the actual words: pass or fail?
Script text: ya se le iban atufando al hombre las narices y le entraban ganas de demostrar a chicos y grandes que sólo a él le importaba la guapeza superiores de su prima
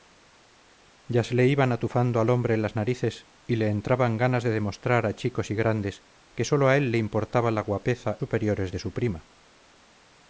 pass